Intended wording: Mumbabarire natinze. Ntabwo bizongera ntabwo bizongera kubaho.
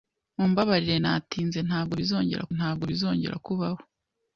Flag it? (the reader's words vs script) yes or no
no